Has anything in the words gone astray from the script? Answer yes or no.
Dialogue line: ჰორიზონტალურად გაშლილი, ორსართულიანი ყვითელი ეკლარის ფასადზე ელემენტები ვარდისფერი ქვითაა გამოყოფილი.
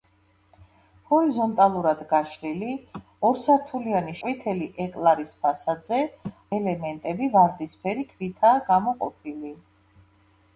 no